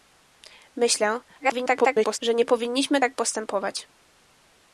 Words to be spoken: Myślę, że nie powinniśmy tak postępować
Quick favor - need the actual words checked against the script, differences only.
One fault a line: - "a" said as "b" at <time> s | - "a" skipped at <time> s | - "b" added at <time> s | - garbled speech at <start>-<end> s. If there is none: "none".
- garbled speech at 1.4-2.2 s